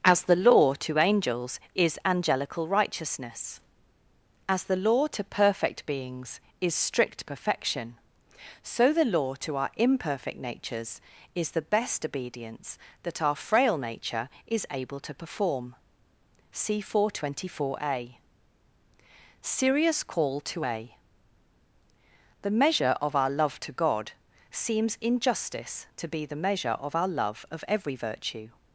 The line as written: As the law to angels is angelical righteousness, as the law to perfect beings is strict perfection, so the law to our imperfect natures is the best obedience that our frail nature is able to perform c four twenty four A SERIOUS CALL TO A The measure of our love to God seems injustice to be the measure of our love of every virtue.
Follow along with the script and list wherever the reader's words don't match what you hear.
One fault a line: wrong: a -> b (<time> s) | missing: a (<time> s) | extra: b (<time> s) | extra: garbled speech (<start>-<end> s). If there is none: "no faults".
no faults